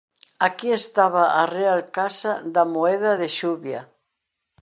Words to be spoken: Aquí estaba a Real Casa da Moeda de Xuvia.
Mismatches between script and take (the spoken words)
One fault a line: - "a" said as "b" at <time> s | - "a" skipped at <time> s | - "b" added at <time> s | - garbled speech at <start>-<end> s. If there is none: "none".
none